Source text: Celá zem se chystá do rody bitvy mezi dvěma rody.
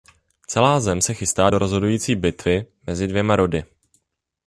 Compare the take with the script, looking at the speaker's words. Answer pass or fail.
fail